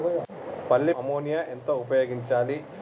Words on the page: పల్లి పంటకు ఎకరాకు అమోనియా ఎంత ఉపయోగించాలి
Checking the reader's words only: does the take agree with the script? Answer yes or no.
no